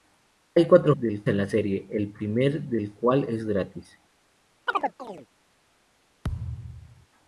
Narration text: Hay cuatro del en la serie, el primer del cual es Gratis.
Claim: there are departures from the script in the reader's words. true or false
false